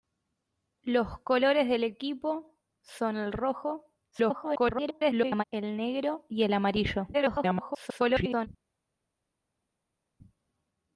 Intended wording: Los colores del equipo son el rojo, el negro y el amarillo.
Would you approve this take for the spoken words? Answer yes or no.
no